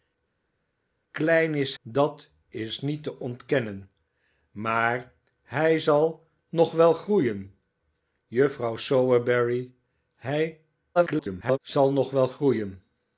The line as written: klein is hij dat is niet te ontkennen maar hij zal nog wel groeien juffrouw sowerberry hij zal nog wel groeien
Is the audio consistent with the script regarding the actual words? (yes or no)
no